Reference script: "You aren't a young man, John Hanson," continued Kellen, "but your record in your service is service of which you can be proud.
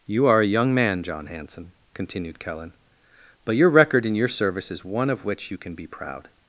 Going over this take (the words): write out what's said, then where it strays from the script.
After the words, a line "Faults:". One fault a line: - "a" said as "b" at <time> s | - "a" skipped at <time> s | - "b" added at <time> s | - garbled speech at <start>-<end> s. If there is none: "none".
"You are a young man, John Hanson," continued Kellen, "but your record in your service is one of which you can be proud.
Faults:
- "aren't" said as "are" at 0.2 s
- "service" said as "one" at 4.8 s